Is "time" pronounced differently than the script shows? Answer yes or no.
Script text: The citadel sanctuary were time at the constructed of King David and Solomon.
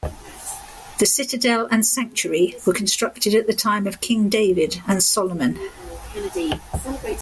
yes